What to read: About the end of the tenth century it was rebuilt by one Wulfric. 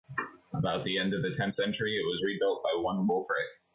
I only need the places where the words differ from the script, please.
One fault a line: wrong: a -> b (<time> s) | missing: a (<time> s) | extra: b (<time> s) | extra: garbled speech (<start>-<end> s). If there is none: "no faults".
no faults